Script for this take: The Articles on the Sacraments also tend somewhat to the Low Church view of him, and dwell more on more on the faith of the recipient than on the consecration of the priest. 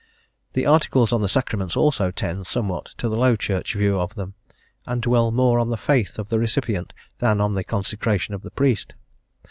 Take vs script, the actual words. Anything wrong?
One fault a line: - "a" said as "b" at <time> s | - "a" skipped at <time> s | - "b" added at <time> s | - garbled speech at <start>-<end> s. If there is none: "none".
- "him" said as "them" at 4.2 s
- "more on" skipped at 5.7 s